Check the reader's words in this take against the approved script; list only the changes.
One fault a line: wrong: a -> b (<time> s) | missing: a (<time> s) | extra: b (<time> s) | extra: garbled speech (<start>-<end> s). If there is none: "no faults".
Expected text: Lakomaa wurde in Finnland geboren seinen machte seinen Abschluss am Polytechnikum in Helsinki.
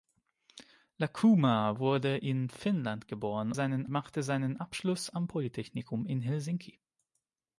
no faults